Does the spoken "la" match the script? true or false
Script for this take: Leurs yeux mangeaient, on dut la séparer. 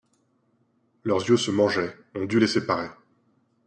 false